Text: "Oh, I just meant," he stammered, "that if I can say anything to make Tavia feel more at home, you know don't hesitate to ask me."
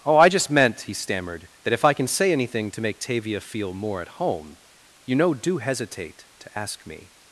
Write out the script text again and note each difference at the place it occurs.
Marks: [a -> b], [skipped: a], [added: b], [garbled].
"Oh, I just meant," he stammered, "that if I can say anything to make Tavia feel more at home, you know [don't -> do] hesitate to ask me."